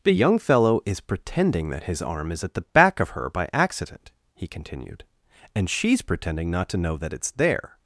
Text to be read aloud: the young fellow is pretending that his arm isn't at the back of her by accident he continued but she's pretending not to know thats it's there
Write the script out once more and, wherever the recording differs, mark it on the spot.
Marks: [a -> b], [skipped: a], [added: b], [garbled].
the young fellow is pretending that his arm [isn't -> is] at the back of her by accident he continued [but -> and] she's pretending not to know [thats -> that] it's there